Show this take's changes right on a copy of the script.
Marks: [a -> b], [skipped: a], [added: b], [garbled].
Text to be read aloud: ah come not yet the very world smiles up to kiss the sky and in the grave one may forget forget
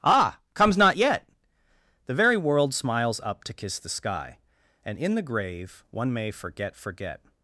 ah [come -> comes] not yet the very world smiles up to kiss the sky and in the grave one may forget forget